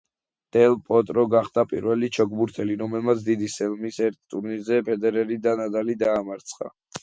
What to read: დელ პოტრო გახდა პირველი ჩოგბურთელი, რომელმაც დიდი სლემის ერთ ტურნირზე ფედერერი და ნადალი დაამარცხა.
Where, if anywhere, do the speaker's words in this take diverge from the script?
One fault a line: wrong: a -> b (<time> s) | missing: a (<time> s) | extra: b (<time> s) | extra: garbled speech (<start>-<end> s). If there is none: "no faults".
no faults